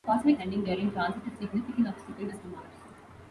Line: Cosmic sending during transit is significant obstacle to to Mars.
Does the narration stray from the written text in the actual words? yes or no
no